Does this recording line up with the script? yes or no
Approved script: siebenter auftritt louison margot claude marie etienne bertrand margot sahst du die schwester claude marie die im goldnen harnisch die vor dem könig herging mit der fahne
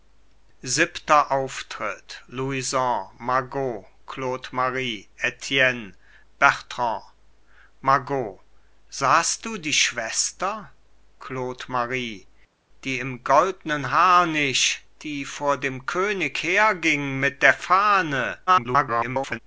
no